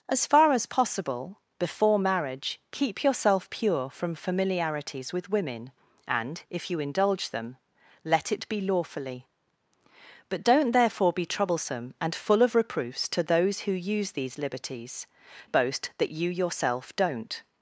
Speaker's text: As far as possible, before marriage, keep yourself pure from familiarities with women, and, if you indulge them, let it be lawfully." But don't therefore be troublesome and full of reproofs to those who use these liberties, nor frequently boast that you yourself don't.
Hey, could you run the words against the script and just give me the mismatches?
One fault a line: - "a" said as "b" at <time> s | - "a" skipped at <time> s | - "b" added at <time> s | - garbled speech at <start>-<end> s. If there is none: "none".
- "nor frequently" skipped at 15.1 s